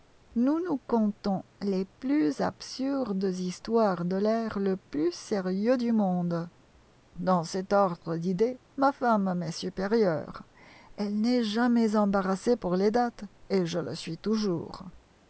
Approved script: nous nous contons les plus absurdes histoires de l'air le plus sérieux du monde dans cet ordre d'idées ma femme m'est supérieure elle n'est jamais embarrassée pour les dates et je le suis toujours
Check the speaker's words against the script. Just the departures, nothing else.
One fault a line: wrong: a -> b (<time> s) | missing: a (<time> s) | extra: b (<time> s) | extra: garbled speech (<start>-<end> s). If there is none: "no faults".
no faults